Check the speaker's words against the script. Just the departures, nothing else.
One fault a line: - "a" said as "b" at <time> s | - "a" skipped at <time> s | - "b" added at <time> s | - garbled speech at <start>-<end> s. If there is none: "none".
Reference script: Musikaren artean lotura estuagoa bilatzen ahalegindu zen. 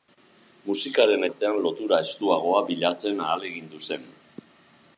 none